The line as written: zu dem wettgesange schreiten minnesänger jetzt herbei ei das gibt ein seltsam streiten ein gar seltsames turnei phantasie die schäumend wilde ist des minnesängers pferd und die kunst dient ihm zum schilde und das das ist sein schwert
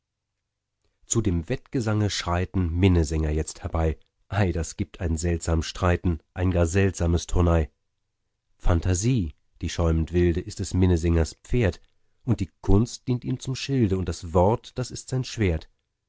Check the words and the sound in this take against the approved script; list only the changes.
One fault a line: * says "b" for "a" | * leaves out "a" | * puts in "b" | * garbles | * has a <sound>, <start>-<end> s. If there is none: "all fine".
* puts in "wort"